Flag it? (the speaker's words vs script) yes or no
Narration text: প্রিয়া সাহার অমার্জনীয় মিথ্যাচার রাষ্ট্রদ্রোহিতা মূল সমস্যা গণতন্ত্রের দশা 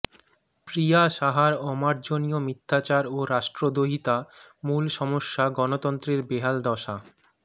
yes